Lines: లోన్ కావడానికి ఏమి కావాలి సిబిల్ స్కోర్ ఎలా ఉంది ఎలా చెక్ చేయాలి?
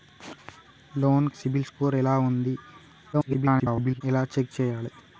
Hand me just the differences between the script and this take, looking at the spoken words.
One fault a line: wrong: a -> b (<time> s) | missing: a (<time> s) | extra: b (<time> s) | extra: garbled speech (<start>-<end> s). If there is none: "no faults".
missing: కావడానికి ఏమి కావాలి (1.3 s)
extra: garbled speech (3.1-4.0 s)